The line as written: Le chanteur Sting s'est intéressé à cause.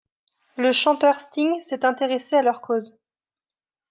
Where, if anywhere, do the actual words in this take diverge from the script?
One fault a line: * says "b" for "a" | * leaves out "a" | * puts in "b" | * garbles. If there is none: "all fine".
* puts in "leur"